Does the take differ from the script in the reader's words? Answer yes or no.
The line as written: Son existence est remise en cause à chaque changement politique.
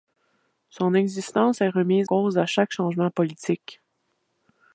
yes